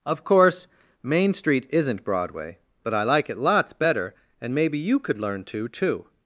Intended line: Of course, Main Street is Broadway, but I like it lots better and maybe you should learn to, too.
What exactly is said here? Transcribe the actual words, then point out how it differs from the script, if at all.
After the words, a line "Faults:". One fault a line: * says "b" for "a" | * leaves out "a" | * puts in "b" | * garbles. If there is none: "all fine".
Of course, Main Street isn't Broadway, but I like it lots better and maybe you could learn to, too.
Faults:
* says "isn't" for "is"
* says "could" for "should"